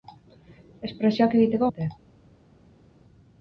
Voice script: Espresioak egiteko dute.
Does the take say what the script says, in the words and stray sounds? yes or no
yes